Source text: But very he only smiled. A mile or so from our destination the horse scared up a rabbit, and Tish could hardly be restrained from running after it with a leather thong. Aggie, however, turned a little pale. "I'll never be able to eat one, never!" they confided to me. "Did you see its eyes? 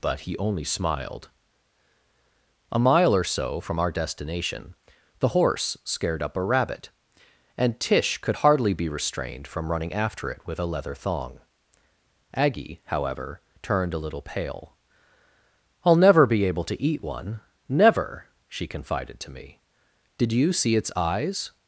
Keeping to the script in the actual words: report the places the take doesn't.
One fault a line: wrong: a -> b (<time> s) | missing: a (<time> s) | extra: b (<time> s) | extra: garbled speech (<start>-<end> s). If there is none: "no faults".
missing: very (0.2 s)
wrong: they -> she (18.5 s)